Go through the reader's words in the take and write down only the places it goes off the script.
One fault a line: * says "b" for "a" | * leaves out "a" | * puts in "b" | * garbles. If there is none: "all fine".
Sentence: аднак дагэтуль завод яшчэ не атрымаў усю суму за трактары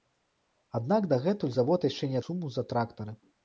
* leaves out "атрымаў усю"